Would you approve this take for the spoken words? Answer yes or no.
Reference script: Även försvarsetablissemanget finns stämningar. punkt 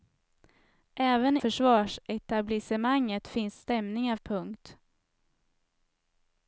yes